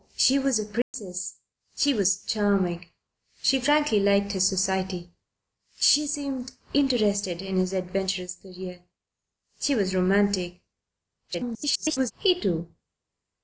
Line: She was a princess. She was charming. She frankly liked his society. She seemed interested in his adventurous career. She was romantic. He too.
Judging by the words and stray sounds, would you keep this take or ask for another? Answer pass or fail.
fail